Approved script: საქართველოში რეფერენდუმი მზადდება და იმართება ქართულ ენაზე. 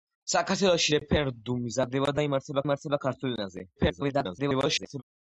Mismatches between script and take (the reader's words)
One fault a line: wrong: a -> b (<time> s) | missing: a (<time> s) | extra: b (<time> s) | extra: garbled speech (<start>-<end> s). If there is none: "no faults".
extra: იმართება (2.7 s)
extra: garbled speech (3.8-5.0 s)